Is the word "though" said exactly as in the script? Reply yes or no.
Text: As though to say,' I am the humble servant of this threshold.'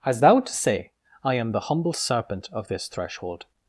no